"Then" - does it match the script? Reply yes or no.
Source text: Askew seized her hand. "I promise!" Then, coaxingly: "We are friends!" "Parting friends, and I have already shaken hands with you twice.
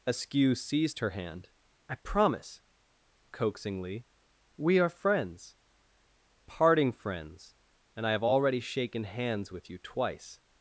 no